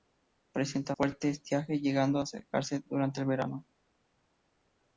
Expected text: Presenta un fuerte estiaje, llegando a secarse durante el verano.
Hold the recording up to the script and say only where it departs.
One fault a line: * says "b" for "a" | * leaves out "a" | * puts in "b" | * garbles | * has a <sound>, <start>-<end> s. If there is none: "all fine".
* leaves out "un"